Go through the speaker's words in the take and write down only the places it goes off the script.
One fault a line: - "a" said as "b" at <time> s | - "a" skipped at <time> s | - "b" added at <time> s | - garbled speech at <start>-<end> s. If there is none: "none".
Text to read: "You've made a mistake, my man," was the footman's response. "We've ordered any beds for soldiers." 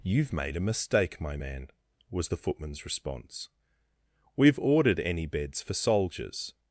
none